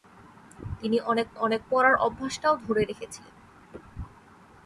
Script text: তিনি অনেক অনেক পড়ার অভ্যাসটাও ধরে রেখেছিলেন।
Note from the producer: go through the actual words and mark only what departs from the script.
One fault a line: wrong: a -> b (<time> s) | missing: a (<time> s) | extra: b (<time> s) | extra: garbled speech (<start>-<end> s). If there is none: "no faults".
no faults